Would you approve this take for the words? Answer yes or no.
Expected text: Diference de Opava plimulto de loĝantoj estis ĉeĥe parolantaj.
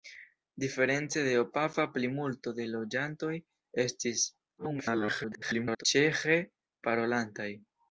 no